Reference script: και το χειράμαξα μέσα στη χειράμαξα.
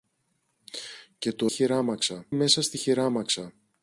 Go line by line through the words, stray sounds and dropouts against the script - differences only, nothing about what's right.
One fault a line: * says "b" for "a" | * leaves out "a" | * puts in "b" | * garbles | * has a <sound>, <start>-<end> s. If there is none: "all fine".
all fine